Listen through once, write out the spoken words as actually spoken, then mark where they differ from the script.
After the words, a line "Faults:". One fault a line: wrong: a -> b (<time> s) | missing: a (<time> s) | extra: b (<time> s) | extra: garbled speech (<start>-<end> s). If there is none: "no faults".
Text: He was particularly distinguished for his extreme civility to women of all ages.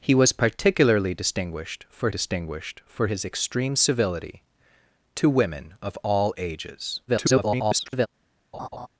He was particularly distinguished for distinguished for his extreme civility to women of all ages. [garbled]
Faults:
extra: distinguished for (2.1 s)
extra: garbled speech (7.1-8.1 s)